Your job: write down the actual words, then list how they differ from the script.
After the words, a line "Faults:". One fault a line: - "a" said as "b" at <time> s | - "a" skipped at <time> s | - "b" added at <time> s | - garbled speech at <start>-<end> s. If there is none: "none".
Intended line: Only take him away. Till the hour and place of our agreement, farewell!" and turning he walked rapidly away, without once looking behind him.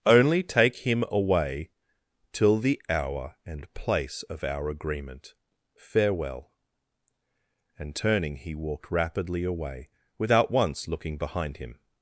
Only take him away. Till the hour and place of our agreement, farewell!" and turning he walked rapidly away, without once looking behind him.
Faults:
none